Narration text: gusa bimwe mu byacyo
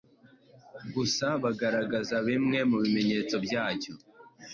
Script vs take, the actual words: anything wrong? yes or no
yes